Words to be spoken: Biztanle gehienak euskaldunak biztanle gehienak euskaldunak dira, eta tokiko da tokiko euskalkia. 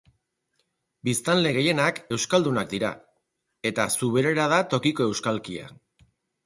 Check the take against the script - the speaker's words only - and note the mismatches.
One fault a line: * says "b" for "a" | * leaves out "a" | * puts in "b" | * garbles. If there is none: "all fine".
* leaves out "biztanle gehienak euskaldunak"
* says "zuberera" for "tokiko"